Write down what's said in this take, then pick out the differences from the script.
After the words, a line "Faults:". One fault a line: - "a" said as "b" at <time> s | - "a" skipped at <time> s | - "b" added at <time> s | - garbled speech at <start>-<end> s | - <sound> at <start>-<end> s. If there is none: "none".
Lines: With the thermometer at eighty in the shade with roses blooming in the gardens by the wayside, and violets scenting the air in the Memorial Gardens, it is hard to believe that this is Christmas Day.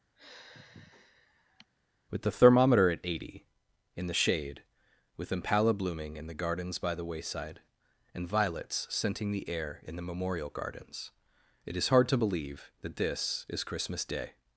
With the thermometer at eighty in the shade with impala blooming in the gardens by the wayside, and violets scenting the air in the Memorial Gardens, it is hard to believe that this is Christmas Day.
Faults:
- sigh at 0.2-1.7 s
- "roses" said as "impala" at 5.3 s